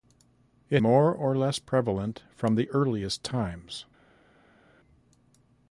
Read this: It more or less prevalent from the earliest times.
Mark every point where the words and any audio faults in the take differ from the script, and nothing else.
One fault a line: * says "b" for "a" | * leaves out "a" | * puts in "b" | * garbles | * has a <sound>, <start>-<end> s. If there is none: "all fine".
all fine